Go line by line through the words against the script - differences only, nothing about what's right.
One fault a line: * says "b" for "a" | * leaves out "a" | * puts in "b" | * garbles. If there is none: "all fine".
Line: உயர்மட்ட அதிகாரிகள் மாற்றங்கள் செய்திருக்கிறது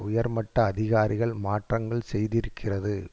all fine